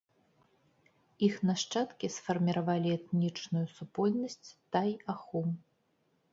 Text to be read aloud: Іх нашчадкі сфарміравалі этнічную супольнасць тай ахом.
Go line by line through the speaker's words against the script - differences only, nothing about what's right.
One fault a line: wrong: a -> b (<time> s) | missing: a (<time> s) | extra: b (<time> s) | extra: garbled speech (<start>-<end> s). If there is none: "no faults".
no faults